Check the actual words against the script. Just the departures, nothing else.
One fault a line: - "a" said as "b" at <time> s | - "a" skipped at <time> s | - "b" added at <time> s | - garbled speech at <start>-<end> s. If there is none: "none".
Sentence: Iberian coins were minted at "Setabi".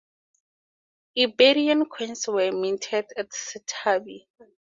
none